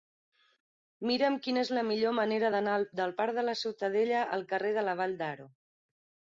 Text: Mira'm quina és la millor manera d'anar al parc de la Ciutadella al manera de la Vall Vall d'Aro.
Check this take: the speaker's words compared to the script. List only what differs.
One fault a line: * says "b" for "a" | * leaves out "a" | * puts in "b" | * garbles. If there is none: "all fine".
* says "del" for "al"
* says "carrer" for "manera"
* leaves out "Vall"